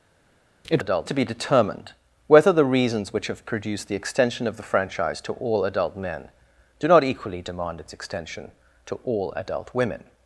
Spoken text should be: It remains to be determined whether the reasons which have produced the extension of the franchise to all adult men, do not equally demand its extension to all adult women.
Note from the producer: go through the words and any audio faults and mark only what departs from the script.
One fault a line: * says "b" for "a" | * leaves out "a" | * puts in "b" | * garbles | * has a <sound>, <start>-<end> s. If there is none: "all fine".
* says "adult" for "remains"